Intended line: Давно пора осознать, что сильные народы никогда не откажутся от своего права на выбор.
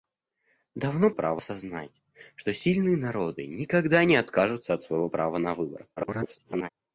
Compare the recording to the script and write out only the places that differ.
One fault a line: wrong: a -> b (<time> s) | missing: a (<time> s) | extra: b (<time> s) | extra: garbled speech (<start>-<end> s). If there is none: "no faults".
wrong: пора -> права (1.1 s)
extra: garbled speech (6.0-6.7 s)